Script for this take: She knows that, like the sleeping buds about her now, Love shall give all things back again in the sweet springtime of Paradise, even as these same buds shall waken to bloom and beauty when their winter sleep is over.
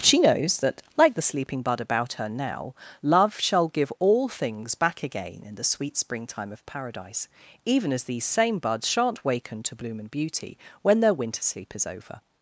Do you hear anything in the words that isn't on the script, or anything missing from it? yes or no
yes